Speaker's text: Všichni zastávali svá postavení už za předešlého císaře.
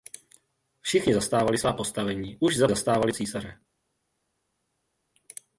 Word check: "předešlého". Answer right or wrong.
wrong